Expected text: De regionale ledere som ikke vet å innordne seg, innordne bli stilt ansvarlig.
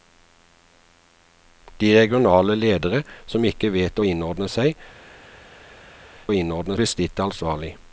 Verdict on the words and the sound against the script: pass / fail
pass